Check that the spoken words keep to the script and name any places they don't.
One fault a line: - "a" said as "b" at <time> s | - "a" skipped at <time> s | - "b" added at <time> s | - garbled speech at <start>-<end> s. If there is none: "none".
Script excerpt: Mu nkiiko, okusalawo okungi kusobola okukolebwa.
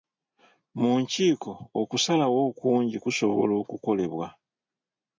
none